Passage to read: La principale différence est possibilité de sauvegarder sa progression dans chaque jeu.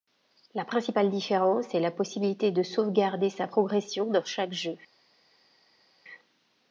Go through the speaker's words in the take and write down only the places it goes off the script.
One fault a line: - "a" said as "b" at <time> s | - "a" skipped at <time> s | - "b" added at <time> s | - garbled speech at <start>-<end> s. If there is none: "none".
- "la" added at 1.8 s